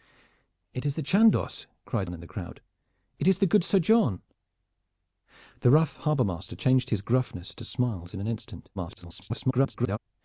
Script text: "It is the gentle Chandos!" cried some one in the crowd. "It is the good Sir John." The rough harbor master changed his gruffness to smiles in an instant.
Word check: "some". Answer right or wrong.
wrong